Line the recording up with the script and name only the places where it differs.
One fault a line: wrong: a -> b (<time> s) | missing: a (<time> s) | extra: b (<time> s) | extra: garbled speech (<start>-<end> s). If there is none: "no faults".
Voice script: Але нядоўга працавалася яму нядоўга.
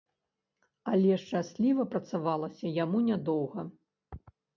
wrong: нядоўга -> шчасліва (1.2 s)